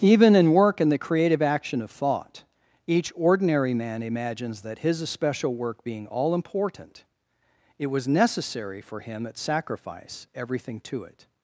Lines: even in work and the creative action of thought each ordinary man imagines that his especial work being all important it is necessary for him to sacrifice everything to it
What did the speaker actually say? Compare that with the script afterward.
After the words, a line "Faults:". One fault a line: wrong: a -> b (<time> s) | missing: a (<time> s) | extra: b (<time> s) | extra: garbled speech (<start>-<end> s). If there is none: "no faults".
even in work and the creative action of thought each ordinary man imagines that his especial work being all important it was necessary for him at sacrifice everything to it
Faults:
wrong: is -> was (7.9 s)
wrong: to -> at (9.3 s)